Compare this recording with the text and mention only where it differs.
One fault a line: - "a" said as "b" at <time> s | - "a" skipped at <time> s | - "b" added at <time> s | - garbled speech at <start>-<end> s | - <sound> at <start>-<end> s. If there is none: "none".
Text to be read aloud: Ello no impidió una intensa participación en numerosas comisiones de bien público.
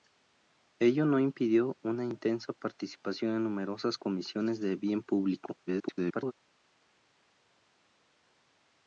- garbled speech at 5.7-6.3 s